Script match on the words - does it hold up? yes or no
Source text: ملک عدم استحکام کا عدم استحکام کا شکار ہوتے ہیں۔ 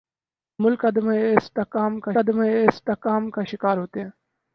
yes